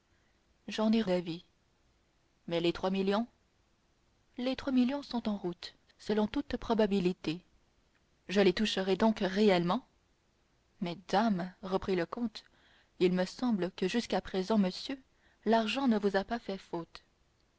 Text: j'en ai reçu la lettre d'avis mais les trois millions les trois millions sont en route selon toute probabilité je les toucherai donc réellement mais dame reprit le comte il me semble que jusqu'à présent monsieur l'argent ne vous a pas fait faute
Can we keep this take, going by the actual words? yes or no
no